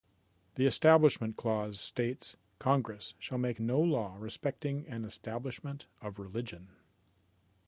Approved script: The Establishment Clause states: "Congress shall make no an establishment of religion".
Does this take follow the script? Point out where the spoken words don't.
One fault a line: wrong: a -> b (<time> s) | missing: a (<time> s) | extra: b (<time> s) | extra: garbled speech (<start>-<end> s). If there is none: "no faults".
extra: law respecting (3.8 s)